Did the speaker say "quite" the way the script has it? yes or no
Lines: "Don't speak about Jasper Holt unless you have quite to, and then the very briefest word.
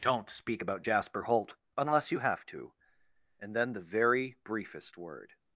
no